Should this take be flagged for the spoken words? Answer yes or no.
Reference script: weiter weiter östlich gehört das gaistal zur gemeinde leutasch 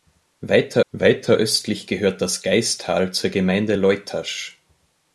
no